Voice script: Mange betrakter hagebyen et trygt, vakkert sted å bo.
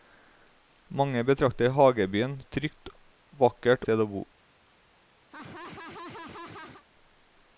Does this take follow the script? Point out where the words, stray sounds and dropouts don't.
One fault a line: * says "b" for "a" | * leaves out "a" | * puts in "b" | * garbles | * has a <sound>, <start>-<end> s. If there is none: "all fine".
* has a laugh, 5.3-6.8 s